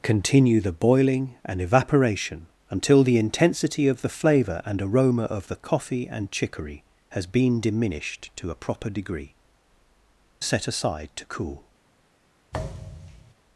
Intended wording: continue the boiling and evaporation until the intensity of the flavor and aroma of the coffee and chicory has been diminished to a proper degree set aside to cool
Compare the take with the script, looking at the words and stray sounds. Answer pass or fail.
fail